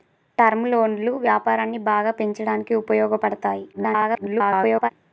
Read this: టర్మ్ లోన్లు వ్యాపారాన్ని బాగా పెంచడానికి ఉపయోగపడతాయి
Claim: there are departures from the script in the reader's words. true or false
true